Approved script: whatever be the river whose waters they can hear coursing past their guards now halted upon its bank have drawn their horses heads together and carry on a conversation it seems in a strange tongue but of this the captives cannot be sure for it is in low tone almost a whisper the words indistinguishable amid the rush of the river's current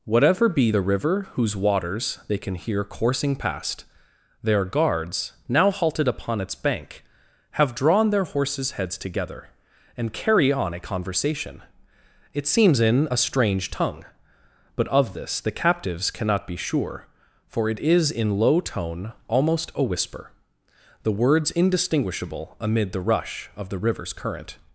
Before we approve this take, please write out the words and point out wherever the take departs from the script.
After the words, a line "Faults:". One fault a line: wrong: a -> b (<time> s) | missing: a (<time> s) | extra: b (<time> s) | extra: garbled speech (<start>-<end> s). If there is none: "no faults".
whatever be the river whose waters they can hear coursing past their guards now halted upon its bank have drawn their horses heads together and carry on a conversation it seems in a strange tongue but of this the captives cannot be sure for it is in low tone almost a whisper the words indistinguishable amid the rush of the river's current
Faults:
no faults